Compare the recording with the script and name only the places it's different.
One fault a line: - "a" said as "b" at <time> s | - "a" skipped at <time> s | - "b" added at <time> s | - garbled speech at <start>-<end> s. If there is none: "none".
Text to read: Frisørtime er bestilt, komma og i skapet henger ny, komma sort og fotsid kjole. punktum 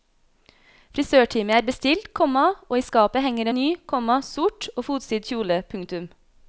none